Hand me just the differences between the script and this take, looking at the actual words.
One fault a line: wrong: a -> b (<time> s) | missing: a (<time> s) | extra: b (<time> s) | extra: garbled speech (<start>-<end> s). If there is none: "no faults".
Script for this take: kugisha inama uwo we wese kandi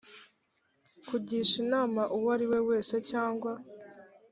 extra: ari (2.4 s)
wrong: kandi -> cyangwa (3.1 s)